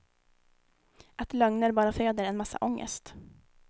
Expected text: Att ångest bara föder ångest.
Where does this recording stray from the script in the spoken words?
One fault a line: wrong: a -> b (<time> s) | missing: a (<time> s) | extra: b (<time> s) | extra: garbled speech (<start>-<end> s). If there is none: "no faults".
wrong: ångest -> lögner (1.3 s)
extra: en massa (2.2 s)